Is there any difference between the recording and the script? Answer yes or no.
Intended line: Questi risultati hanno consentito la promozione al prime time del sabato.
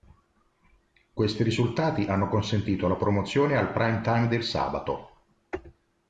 no